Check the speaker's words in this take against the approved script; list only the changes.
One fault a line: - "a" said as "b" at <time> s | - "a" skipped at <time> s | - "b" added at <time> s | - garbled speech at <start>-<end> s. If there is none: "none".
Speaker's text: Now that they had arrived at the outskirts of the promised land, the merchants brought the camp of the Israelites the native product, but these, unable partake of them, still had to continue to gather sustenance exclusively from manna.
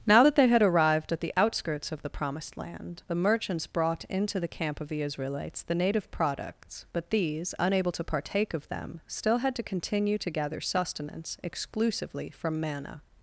- "into" added at 4.0 s
- "product" said as "products" at 6.1 s
- "to" added at 7.9 s